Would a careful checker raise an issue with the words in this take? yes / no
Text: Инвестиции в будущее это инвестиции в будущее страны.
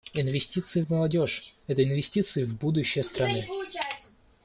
yes